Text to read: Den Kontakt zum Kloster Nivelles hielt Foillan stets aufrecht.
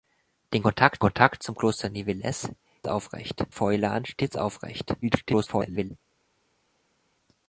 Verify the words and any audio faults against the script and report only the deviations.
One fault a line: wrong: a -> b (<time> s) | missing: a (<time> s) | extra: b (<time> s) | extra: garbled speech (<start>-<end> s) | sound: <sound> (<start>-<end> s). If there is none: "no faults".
extra: Kontakt (1.0 s)
wrong: hielt -> aufrecht (2.9 s)
extra: garbled speech (5.0-5.9 s)